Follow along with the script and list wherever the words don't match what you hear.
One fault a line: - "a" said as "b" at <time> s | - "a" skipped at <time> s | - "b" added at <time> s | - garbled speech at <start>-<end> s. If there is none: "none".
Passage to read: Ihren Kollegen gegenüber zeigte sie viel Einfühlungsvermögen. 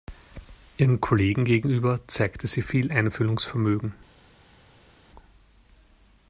none